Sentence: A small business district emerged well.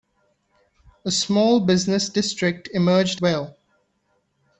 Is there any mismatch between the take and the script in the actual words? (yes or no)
no